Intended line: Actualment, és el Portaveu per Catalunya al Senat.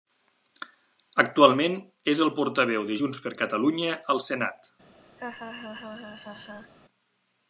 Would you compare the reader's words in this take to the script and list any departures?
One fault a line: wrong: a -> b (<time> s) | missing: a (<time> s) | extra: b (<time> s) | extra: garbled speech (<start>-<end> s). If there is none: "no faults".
extra: de Junts (2.9 s)